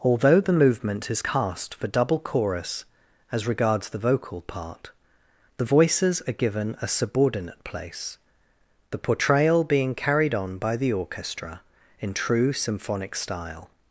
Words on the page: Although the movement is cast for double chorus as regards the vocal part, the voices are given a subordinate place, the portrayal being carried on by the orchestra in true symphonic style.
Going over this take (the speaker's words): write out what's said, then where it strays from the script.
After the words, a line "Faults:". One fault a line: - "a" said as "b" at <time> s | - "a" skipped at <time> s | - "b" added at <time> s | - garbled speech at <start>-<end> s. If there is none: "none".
Although the movement is cast for double chorus as regards the vocal part, the voices are given a subordinate place, the portrayal being carried on by the orchestra in true symphonic style.
Faults:
none